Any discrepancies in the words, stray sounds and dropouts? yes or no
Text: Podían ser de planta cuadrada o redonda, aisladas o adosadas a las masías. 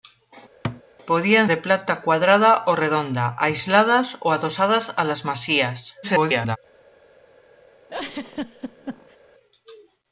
yes